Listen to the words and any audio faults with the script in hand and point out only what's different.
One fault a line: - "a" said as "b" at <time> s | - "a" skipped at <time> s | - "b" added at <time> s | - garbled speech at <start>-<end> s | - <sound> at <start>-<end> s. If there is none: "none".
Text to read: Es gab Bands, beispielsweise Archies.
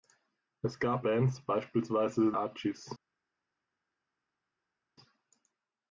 none